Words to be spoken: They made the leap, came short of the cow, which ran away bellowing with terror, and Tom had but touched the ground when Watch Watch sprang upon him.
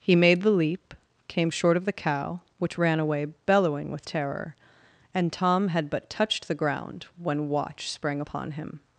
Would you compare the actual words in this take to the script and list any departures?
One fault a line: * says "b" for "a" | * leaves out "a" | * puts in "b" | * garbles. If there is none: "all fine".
* says "He" for "They"
* leaves out "Watch"